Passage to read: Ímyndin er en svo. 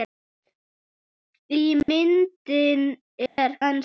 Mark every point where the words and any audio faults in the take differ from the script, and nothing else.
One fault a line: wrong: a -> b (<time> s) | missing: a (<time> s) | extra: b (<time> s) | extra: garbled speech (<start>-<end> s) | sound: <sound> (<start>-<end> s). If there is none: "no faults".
sound: dropout (1.8-1.9 s)
sound: dropout (3.3-3.4 s)